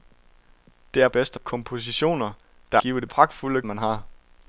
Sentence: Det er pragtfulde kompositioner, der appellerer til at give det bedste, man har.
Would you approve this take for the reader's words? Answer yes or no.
no